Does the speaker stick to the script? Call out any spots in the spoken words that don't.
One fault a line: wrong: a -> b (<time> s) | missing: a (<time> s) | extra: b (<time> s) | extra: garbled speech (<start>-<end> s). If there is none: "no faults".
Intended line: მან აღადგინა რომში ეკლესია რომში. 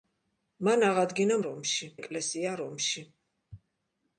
no faults